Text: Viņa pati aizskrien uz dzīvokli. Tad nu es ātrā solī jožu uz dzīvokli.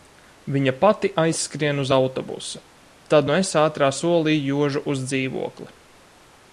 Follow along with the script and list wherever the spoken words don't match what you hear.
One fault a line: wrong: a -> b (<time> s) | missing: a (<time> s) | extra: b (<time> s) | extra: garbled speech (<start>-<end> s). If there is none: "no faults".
wrong: dzīvokli -> autobusu (2.0 s)